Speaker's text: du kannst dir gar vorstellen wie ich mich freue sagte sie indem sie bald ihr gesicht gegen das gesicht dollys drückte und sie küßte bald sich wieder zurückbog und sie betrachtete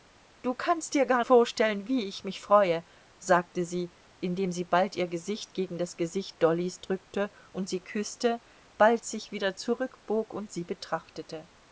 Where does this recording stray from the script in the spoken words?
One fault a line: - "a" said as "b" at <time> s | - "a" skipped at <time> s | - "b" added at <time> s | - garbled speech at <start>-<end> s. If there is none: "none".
none